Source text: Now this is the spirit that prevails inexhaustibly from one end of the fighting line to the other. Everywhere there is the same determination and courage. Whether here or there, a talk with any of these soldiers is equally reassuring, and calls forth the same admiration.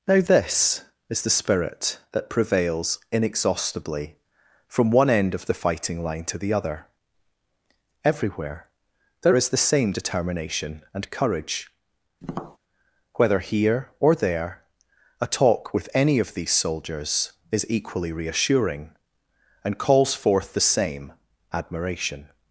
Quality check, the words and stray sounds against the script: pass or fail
fail